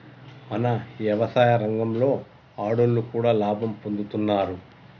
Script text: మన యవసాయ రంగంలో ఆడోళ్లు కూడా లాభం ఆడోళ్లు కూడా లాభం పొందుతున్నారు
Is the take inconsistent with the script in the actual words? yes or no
yes